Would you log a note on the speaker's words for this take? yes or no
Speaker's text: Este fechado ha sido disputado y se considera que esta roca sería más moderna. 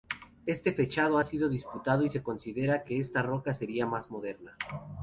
no